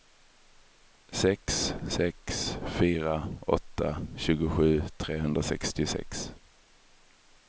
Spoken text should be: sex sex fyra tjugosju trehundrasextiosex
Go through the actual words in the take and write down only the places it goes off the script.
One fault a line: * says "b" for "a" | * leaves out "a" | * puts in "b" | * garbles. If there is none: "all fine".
* puts in "åtta"